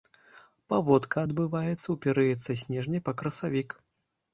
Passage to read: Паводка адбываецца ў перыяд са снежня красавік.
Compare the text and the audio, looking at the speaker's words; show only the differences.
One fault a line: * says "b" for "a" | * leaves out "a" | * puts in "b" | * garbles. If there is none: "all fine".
* puts in "па"